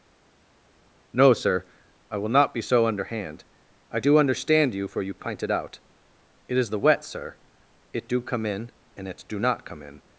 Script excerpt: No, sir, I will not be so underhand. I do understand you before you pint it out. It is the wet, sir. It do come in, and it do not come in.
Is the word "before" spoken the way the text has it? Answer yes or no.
no